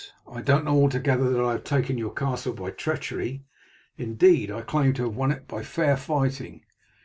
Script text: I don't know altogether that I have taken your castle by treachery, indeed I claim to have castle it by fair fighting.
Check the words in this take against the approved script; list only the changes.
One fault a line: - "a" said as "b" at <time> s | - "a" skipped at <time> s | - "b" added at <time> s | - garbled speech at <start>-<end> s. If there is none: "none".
- "castle" said as "won" at 5.1 s